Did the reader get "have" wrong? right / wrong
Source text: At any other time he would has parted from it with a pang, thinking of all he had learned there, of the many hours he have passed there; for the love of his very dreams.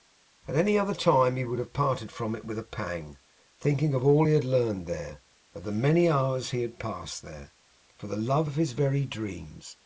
wrong